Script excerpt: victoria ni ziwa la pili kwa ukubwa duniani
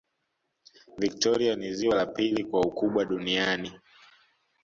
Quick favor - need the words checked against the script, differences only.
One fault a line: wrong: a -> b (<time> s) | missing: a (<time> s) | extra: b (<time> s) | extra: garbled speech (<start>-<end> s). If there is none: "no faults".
no faults